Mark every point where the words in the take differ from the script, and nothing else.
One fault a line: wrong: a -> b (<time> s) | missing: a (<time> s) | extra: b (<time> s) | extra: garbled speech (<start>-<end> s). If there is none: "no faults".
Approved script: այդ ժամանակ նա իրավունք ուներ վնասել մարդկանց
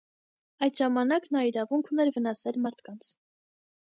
no faults